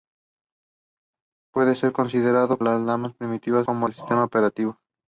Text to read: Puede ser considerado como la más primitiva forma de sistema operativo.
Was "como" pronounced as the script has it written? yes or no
no